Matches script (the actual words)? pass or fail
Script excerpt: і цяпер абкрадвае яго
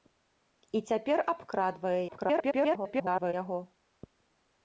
fail